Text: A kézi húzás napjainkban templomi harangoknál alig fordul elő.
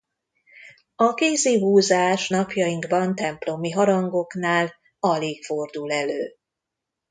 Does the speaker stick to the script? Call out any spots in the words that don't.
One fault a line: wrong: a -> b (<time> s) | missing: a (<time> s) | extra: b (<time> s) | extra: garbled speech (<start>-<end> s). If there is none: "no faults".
no faults